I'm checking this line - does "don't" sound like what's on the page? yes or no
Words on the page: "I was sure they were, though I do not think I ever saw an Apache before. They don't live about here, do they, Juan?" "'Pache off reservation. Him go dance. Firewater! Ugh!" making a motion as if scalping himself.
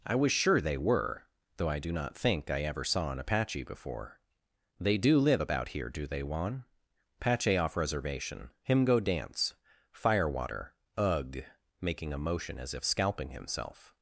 no